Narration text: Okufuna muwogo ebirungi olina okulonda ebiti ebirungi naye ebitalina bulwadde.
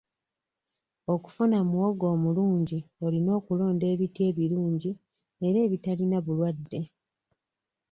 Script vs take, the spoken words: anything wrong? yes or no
yes